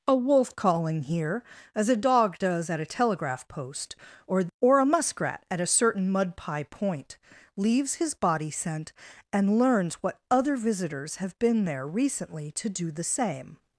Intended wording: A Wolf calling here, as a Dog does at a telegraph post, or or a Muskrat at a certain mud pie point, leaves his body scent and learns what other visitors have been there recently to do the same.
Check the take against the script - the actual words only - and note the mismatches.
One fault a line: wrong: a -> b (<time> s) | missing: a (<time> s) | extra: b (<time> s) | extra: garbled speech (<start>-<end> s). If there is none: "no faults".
no faults